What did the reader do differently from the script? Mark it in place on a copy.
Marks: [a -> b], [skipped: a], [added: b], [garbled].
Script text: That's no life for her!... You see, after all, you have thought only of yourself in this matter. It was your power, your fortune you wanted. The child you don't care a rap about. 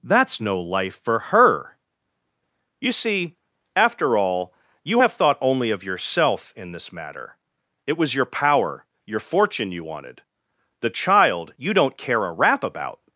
That's no life for her!... You see, after all, you have thought only of yourself in this matter. It was your power, your fortune you wanted. The child you don't care a rap about.